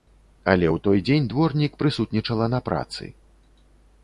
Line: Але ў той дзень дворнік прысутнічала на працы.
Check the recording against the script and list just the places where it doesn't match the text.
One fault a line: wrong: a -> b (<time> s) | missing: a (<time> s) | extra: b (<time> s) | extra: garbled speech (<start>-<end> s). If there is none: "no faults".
no faults